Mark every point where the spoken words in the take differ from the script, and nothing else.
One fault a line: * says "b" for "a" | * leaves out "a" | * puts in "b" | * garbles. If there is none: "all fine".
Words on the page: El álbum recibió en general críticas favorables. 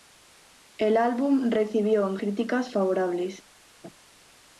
* leaves out "general"